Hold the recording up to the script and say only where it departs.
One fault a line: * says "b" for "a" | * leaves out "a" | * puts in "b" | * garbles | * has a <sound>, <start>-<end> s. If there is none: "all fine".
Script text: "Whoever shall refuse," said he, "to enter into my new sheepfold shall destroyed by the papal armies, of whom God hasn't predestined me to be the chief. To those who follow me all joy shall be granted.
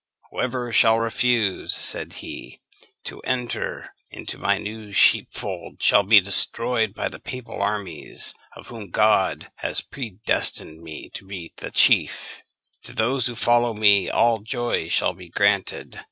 * puts in "be"
* says "has" for "hasn't"